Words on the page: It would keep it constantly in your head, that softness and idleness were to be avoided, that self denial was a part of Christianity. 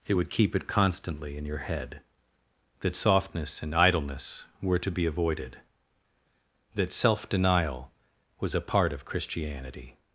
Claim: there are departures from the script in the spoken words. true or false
false